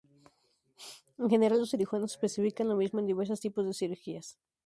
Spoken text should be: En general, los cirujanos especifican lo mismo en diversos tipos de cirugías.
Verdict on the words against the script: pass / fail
pass